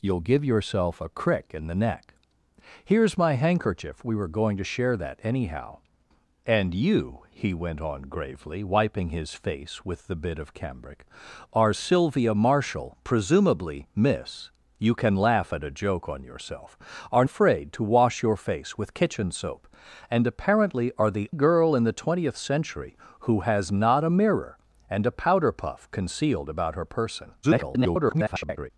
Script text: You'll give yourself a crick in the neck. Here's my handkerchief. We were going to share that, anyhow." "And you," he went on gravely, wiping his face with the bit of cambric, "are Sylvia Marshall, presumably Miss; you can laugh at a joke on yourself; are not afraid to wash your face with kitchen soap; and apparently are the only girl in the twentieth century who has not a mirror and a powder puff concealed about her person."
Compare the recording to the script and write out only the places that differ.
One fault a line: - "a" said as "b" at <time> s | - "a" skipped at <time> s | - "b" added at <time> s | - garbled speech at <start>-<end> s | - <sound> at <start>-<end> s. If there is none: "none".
- "not" skipped at 17.2 s
- "only" skipped at 21.3 s
- garbled speech at 27.4-28.7 s